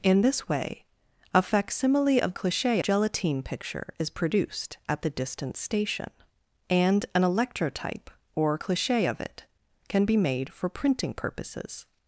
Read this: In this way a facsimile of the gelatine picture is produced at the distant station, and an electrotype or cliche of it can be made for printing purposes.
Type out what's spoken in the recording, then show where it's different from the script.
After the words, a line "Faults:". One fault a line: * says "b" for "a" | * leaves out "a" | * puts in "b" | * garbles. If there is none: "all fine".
In this way a facsimile of cliche gelatine picture is produced at the distant station, and an electrotype or cliche of it can be made for printing purposes.
Faults:
* says "cliche" for "the"